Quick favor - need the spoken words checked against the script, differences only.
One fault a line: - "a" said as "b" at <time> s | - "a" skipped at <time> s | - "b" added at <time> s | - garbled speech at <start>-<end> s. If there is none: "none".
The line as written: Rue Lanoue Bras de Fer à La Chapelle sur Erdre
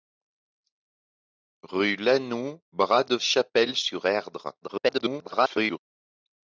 - "Fer à La" skipped at 3.2 s
- garbled speech at 4.6-5.8 s